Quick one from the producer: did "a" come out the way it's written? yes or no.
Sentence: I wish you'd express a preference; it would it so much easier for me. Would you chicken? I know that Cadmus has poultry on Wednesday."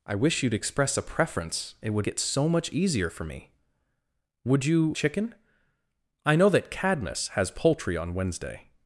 yes